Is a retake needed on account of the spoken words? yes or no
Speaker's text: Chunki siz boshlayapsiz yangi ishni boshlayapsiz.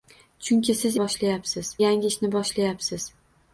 no